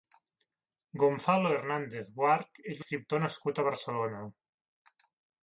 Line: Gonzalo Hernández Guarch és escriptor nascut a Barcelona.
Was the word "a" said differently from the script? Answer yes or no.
no